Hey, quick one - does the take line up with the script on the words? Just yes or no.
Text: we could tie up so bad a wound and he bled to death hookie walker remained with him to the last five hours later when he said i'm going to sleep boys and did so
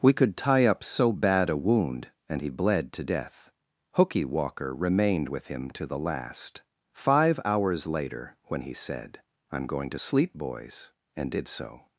yes